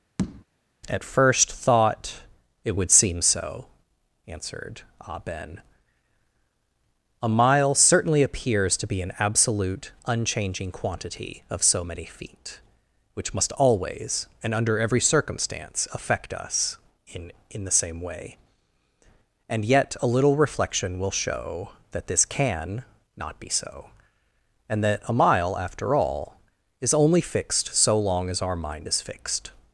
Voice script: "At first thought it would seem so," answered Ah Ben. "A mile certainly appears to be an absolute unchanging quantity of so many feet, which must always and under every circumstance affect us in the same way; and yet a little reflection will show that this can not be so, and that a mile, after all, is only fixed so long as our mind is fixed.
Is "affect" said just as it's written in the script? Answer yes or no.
yes